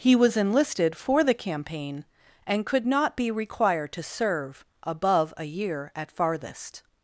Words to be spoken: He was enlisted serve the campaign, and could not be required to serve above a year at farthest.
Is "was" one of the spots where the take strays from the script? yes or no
no